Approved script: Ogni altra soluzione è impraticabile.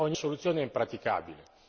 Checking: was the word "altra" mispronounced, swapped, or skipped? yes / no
yes